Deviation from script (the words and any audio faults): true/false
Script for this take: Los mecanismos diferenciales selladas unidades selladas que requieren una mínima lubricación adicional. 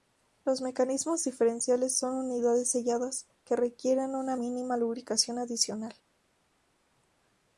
true